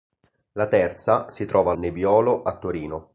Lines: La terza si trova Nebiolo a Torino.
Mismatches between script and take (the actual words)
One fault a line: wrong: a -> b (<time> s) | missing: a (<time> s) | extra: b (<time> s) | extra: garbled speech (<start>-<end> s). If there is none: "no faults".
no faults